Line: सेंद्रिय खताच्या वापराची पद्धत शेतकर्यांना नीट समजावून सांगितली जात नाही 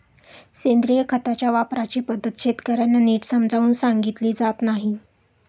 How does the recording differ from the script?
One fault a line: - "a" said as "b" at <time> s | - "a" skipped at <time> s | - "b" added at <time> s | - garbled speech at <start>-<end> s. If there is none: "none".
none